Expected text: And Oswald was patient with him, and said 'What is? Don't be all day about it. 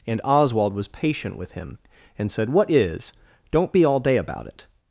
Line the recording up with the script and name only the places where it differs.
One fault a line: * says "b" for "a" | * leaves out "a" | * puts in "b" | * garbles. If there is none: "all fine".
all fine